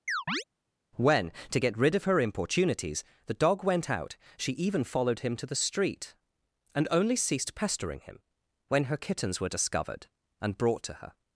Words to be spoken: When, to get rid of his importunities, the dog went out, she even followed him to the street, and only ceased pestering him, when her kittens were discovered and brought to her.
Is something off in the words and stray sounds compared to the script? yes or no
yes